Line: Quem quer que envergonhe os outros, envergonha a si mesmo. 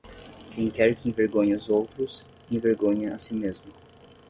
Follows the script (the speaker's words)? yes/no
yes